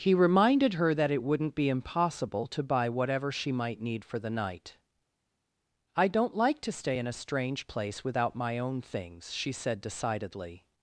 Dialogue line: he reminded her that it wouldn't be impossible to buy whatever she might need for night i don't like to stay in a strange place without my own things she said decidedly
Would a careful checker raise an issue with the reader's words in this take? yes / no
yes